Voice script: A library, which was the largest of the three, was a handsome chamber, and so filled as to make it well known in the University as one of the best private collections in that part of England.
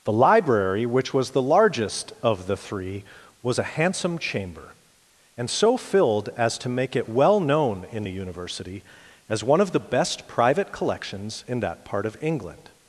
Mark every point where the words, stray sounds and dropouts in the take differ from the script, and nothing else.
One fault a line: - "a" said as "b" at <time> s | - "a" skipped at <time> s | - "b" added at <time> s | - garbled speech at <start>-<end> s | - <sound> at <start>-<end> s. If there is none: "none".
- "A" said as "The" at 0.0 s